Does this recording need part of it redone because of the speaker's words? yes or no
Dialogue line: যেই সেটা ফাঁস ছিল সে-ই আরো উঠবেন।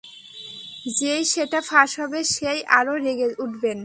yes